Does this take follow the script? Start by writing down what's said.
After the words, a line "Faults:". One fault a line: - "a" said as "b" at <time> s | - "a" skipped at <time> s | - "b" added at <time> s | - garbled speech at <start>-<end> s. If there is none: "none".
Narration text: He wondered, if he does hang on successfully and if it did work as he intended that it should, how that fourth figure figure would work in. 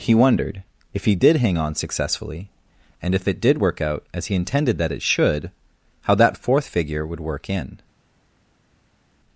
He wondered, if he did hang on successfully and if it did work out as he intended that it should, how that fourth figure would work in.
Faults:
- "does" said as "did" at 1.1 s
- "out" added at 3.8 s
- "figure" skipped at 7.0 s